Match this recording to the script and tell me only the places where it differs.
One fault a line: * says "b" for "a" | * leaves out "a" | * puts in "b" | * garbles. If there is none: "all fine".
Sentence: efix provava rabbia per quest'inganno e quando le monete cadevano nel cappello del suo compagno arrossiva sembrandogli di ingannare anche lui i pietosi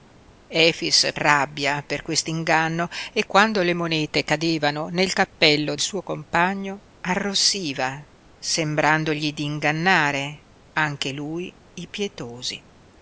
* leaves out "provava"
* leaves out "del"